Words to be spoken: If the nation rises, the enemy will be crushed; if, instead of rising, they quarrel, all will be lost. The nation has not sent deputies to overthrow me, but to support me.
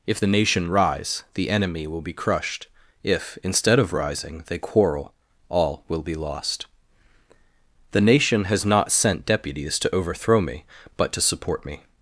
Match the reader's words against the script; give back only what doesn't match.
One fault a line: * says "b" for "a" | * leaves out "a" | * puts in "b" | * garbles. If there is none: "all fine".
* says "rise" for "rises"